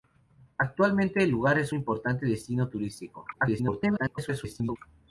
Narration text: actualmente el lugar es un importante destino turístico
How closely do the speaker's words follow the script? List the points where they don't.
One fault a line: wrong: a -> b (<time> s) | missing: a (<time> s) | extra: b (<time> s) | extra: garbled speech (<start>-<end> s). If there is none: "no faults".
missing: un (1.8 s)
extra: garbled speech (3.3-4.8 s)